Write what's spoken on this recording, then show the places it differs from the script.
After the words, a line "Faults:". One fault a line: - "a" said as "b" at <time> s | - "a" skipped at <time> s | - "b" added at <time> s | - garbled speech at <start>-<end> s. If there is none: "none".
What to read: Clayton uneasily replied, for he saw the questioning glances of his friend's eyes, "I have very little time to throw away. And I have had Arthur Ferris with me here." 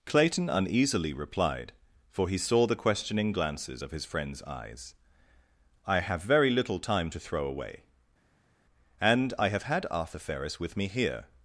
Clayton uneasily replied, for he saw the questioning glances of his friend's eyes, "I have very little time to throw away. And I have had Arthur Ferris with me here."
Faults:
none